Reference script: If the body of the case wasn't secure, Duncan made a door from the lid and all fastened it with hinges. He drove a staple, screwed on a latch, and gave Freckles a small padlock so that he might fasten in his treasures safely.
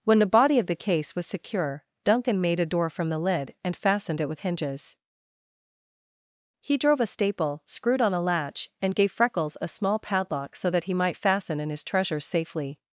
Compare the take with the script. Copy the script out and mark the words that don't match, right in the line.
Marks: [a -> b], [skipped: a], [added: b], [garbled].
[If -> When] the body of the case [wasn't -> was] secure, Duncan made a door from the lid and [skipped: all] fastened it with hinges. He drove a staple, screwed on a latch, and gave Freckles a small padlock so that he might fasten in his treasures safely.